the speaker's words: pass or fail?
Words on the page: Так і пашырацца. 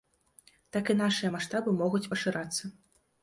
fail